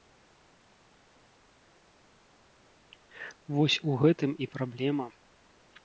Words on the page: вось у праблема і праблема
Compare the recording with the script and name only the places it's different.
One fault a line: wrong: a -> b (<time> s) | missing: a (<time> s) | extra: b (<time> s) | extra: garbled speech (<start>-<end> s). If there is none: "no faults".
wrong: праблема -> гэтым (4.1 s)